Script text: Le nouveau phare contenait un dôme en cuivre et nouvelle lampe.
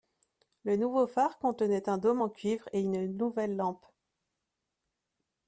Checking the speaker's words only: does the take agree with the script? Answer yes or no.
no